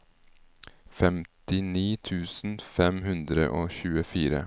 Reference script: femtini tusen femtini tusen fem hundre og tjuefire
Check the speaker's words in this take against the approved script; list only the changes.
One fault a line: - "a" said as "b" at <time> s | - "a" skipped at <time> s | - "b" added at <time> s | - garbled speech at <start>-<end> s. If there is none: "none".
- "femtini tusen" skipped at 2.6 s